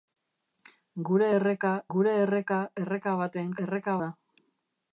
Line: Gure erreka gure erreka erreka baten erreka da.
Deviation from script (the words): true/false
false